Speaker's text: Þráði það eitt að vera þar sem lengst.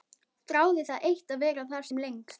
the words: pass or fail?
pass